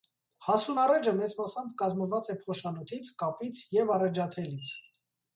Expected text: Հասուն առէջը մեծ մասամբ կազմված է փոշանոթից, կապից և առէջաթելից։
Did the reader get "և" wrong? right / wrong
right